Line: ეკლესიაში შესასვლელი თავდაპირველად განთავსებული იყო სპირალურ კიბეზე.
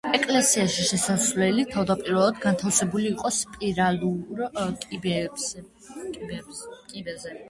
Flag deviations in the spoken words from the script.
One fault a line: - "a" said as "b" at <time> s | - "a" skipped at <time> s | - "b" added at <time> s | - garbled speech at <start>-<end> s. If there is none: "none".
none